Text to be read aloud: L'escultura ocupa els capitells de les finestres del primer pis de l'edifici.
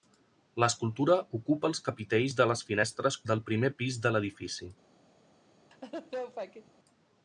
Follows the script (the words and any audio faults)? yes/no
no